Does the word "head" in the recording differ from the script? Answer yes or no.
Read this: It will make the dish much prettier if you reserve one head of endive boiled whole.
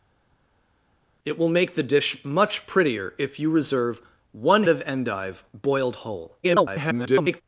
yes